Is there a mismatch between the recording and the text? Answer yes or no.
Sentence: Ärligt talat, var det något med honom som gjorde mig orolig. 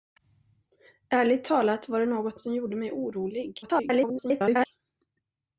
yes